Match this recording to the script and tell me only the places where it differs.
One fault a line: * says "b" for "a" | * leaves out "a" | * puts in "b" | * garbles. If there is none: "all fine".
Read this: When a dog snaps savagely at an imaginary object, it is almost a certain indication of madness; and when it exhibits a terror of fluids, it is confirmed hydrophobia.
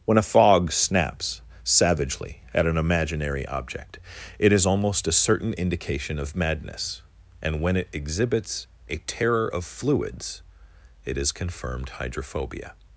* says "fog" for "dog"